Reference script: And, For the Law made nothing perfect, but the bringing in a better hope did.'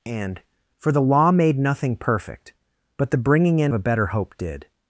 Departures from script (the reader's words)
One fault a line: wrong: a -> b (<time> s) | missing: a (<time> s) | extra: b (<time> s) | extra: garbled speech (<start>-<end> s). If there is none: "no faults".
no faults